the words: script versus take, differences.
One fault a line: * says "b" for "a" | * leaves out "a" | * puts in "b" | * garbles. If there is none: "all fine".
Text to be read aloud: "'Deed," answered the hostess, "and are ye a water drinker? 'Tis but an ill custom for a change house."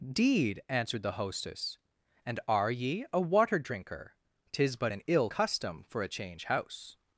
all fine